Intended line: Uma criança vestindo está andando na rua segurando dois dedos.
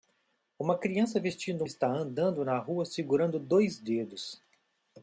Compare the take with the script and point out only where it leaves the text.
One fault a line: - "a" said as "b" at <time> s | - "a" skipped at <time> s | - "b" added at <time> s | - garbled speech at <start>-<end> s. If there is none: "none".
none